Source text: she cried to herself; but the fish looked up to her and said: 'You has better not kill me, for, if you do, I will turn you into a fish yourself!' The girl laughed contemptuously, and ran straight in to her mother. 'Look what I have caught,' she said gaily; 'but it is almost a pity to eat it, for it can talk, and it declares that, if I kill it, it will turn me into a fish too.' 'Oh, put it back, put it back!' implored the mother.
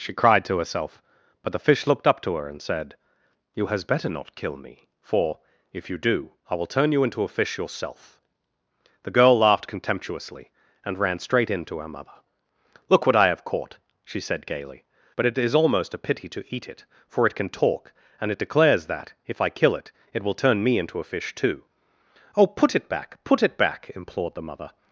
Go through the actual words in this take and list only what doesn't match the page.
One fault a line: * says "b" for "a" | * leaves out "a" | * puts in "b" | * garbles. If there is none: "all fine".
all fine